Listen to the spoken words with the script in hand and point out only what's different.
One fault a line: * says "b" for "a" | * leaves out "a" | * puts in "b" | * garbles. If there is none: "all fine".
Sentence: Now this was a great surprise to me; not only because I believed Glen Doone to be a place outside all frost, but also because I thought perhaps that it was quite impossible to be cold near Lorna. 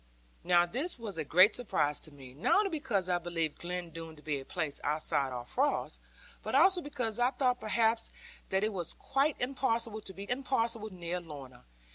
* says "impossible" for "cold"